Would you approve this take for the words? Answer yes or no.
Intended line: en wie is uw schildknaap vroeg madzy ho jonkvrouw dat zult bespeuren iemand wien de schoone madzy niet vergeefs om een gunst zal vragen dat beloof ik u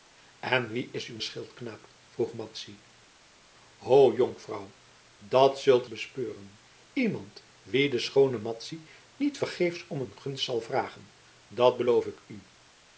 yes